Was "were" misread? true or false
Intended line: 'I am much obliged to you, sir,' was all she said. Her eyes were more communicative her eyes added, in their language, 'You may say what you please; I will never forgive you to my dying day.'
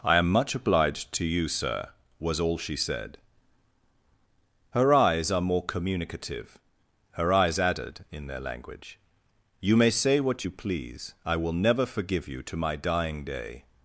true